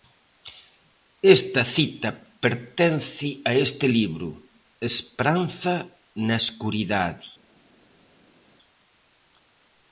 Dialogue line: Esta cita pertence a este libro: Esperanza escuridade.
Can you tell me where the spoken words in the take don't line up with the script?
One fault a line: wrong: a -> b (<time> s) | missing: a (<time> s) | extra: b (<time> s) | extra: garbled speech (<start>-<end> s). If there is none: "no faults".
extra: na (6.3 s)